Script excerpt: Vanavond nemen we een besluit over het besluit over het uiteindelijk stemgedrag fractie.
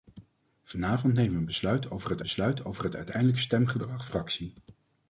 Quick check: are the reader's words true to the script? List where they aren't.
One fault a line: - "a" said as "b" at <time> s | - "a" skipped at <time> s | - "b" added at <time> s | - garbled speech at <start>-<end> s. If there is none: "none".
none